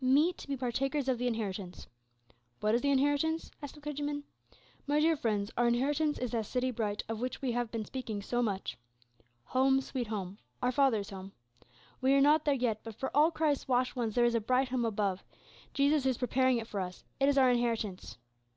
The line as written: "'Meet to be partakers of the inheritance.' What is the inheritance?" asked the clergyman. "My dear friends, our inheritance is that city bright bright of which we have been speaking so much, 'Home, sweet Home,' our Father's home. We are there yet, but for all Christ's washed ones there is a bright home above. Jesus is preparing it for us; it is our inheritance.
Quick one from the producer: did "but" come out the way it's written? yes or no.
yes